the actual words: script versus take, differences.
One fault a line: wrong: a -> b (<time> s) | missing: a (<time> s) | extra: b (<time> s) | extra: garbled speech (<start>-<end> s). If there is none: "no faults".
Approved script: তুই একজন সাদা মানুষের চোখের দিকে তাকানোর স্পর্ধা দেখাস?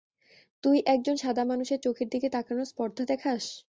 no faults